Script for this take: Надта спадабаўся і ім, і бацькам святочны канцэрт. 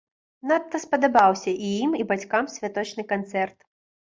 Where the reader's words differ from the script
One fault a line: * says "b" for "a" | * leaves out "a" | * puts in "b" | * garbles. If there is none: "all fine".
all fine